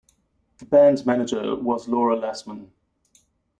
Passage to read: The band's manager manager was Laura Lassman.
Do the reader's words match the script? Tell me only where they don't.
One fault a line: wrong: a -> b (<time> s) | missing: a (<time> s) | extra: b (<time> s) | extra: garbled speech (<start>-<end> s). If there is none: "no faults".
missing: manager (1.6 s)